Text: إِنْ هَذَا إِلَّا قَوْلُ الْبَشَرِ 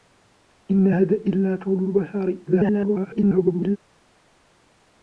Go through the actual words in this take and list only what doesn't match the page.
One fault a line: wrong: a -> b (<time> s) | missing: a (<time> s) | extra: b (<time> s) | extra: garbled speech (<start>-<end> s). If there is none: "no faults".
extra: garbled speech (2.5-3.8 s)